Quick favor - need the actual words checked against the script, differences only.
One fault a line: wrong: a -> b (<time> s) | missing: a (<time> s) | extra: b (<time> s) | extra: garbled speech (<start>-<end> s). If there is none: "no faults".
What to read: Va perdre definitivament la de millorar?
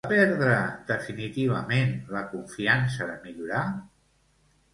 extra: confiança (2.4 s)